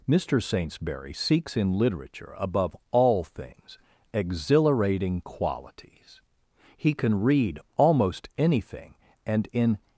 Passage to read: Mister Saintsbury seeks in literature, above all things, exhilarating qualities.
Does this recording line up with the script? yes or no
no